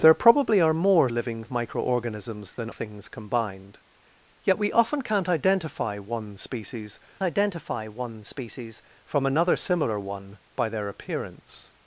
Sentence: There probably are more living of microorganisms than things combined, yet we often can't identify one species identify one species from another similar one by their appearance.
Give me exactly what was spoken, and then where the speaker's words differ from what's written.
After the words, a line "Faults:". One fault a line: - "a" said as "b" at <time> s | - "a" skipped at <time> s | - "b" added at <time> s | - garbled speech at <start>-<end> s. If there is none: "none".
There probably are more living of microorganisms than things combined, yet we often can't identify one species identify one species from another similar one by their appearance.
Faults:
none